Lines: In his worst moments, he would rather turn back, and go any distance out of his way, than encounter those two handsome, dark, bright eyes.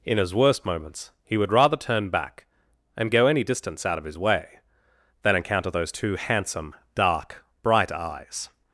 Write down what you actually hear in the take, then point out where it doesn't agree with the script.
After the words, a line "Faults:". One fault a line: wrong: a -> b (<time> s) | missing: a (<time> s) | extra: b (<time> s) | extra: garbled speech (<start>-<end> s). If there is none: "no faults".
In his worst moments, he would rather turn back, and go any distance out of his way, than encounter those two handsome, dark, bright eyes.
Faults:
no faults